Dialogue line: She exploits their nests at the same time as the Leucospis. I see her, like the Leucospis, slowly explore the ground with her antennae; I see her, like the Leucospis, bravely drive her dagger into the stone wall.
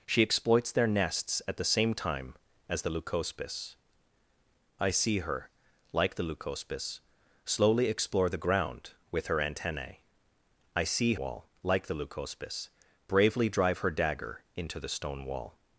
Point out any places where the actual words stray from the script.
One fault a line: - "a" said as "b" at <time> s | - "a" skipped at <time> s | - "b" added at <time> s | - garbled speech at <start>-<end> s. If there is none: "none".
- "her" said as "wall" at 11.2 s